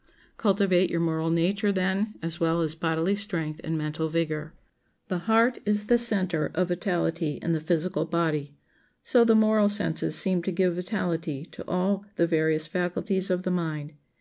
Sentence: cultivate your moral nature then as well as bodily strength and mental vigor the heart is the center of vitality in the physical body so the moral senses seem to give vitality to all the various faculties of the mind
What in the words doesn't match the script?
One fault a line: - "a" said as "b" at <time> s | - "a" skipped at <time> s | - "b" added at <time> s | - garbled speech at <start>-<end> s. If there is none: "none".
none